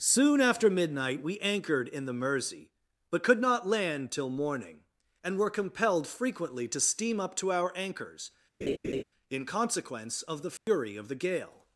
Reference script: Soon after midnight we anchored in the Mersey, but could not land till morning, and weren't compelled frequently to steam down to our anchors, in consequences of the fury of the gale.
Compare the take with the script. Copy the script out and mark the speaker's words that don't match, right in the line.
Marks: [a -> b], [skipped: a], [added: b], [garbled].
Soon after midnight we anchored in the Mersey, but could not land till morning, and [weren't -> were] compelled frequently to steam [down -> up] to our anchors, in [consequences -> consequence] of the fury of the gale.